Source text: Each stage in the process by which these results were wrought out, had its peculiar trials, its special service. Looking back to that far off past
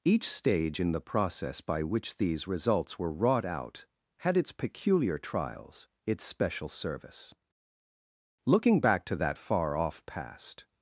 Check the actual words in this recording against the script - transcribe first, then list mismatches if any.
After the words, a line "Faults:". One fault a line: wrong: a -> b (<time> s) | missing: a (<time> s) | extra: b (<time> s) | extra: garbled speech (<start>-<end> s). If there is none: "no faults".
Each stage in the process by which these results were wrought out, had its peculiar trials, its special service. Looking back to that far off past
Faults:
no faults